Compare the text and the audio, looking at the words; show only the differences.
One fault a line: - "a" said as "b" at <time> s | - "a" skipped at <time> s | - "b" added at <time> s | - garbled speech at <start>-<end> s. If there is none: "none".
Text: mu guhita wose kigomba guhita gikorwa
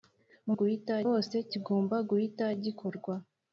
none